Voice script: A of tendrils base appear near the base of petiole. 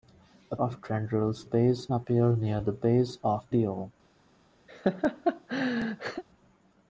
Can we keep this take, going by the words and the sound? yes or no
no